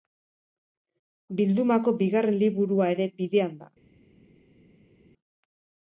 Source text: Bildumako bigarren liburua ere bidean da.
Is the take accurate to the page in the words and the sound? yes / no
yes